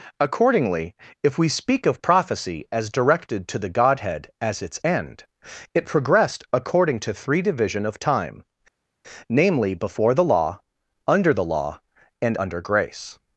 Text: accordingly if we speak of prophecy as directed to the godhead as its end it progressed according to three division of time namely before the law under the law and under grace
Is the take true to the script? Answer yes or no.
yes